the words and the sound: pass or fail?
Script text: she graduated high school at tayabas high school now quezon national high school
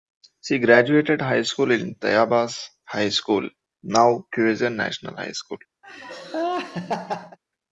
fail